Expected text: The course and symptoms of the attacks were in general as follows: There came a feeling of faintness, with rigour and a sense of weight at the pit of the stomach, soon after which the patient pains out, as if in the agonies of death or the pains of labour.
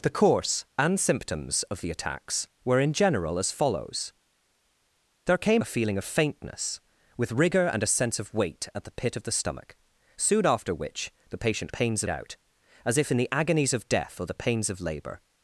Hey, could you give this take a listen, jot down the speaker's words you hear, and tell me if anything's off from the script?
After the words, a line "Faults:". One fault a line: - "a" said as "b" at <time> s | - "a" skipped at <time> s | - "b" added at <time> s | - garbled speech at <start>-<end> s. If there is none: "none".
The course and symptoms of the attacks were in general as follows: There came a feeling of faintness, with rigour and a sense of weight at the pit of the stomach, soon after which the patient pains out, as if in the agonies of death or the pains of labour.
Faults:
none